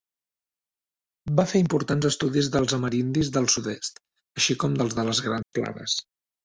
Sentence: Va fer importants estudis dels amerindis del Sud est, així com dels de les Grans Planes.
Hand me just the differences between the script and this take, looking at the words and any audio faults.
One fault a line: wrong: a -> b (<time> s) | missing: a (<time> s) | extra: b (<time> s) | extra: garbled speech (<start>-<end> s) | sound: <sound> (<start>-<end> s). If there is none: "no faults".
sound: dropout (5.4-5.5 s)